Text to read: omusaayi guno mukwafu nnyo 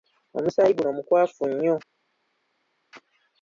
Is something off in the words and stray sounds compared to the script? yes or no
no